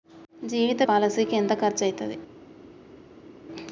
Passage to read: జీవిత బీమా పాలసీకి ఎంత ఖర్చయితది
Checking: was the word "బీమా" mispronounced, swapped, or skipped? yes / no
yes